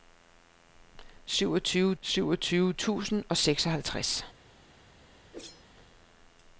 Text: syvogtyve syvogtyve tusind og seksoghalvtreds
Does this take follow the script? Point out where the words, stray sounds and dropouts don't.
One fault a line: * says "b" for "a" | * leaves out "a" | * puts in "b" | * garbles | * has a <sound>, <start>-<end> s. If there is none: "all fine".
* has a whoosh, 5.3-5.7 s